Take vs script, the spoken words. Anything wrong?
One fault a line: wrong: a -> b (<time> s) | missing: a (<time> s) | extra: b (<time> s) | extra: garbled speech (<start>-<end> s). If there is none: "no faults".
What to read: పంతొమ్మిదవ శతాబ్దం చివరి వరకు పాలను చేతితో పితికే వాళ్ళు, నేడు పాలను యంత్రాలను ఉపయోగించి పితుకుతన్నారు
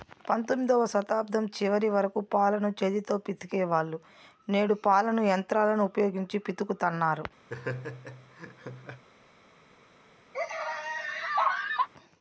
no faults